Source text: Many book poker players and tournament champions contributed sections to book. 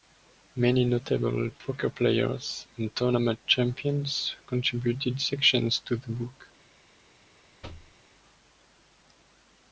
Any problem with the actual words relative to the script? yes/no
yes